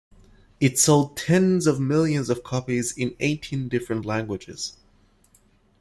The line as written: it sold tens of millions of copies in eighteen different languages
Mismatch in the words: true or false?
false